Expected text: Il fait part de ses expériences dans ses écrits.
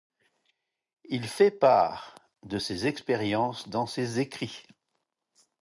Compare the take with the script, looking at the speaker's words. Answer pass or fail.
pass